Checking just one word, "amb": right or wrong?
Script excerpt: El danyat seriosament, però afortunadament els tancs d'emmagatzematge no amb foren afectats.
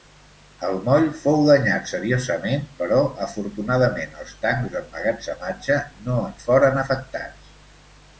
wrong